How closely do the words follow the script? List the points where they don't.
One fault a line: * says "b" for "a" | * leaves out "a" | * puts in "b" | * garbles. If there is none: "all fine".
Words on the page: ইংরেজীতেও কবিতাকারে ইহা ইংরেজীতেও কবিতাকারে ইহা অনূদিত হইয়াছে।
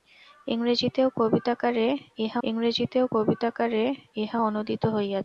all fine